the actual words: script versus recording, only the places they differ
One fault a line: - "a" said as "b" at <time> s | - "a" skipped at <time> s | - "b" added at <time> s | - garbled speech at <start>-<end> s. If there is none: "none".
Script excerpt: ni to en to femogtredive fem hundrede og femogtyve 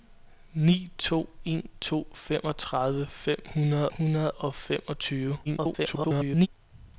- "hundrede" added at 4.0 s
- garbled speech at 5.4-6.5 s